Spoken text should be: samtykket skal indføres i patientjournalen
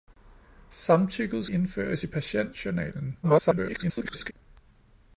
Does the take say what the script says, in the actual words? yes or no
no